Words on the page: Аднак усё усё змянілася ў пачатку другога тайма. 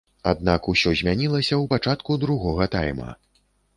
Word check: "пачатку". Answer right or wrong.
right